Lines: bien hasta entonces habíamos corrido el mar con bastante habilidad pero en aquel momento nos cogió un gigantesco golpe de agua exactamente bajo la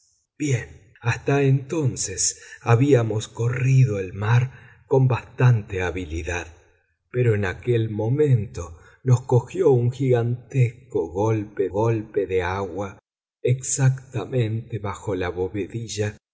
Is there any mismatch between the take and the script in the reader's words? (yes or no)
yes